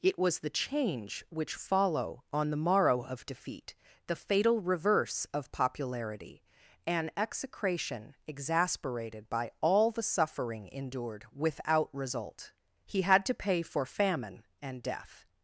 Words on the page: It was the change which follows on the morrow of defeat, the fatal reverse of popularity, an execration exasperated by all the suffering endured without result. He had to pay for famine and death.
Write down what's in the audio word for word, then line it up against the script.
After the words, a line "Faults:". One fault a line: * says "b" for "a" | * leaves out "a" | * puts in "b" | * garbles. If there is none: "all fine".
It was the change which follow on the morrow of defeat, the fatal reverse of popularity, an execration exasperated by all the suffering endured without result. He had to pay for famine and death.
Faults:
* says "follow" for "follows"